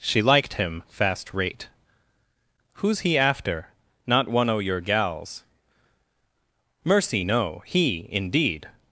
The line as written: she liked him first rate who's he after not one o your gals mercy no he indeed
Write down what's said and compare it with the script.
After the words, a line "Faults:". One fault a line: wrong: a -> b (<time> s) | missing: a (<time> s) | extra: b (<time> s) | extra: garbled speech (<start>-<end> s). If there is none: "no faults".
she liked him fast rate who's he after not one o your gals mercy no he indeed
Faults:
wrong: first -> fast (0.9 s)